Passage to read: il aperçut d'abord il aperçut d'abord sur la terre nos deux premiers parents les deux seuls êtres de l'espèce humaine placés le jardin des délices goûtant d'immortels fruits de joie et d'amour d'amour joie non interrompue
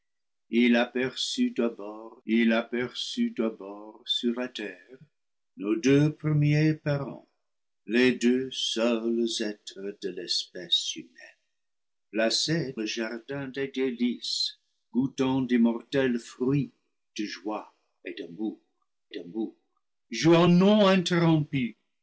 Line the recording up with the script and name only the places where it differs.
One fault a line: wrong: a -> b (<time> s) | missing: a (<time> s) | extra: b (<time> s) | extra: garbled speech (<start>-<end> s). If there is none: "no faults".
no faults